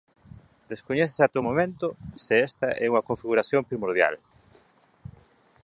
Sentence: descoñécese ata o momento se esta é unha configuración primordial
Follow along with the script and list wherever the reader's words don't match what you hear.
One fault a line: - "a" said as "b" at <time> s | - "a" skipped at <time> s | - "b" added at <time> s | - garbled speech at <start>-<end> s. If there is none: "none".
none